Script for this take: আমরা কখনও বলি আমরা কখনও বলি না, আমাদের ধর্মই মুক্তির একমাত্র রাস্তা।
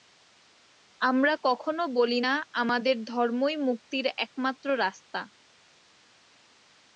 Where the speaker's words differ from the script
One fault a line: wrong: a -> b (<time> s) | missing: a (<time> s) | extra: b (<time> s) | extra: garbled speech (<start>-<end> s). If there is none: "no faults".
missing: আমরা কখনও বলি (2.2 s)